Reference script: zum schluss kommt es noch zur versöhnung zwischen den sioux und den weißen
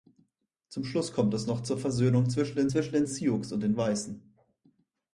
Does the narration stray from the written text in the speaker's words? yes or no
yes